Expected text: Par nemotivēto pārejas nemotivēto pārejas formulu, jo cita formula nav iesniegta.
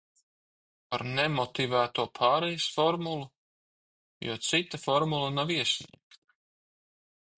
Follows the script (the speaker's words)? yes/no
no